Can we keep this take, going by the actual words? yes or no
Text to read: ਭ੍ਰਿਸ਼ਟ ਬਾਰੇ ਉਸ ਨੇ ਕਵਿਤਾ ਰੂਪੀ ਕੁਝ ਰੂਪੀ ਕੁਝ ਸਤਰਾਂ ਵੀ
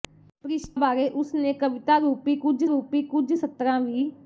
yes